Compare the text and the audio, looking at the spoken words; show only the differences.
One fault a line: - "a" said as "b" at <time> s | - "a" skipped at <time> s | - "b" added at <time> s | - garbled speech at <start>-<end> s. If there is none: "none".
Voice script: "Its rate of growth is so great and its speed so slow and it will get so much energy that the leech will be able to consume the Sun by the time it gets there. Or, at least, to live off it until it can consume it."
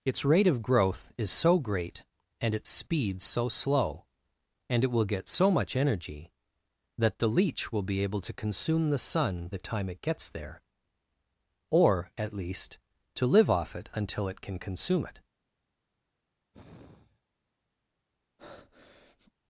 - "by" skipped at 9.5 s